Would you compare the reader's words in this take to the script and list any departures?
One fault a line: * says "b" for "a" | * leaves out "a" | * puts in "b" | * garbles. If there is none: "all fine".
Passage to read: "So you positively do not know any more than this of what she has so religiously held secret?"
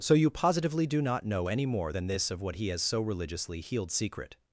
* says "he" for "she"
* says "healed" for "held"